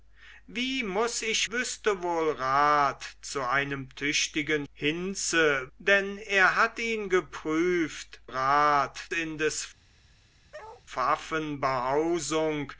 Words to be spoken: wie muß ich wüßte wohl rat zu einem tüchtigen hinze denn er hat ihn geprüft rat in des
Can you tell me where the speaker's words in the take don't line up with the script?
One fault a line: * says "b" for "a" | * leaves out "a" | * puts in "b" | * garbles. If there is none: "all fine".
all fine